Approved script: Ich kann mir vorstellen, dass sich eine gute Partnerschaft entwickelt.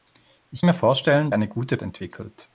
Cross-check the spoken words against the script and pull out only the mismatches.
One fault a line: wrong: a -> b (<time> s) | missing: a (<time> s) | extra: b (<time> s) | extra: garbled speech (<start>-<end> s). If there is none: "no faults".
missing: kann (0.6 s)
missing: dass sich (1.3 s)
missing: Partnerschaft (1.8 s)